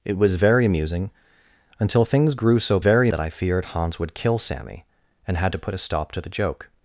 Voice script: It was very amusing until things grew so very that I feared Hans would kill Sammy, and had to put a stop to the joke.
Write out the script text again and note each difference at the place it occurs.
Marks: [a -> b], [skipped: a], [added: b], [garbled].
It was very amusing until things grew so very that I feared Hans would kill Sammy, and had to put a stop to the joke.